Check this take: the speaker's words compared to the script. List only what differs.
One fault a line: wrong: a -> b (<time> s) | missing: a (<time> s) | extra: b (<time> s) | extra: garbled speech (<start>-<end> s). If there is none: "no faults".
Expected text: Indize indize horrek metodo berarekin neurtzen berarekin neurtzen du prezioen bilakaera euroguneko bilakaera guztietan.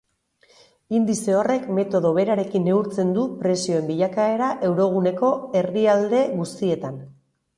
missing: indize (1.4 s)
missing: berarekin neurtzen (3.1 s)
wrong: bilakaera -> herrialde (5.6 s)